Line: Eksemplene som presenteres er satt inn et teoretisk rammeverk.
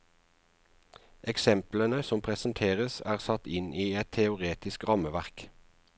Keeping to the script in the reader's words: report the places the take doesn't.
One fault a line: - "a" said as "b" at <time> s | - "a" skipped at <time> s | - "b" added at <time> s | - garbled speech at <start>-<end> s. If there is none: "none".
- "i" added at 3.8 s